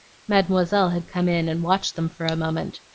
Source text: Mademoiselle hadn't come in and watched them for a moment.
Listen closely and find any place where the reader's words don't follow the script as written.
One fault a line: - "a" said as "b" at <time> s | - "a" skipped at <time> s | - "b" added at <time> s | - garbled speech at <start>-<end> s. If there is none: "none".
- "hadn't" said as "had" at 0.9 s